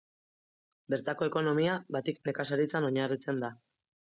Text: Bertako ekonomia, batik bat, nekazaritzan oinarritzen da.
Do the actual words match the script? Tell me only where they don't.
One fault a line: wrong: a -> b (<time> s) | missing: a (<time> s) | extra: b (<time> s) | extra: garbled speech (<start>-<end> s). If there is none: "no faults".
missing: bat (2.2 s)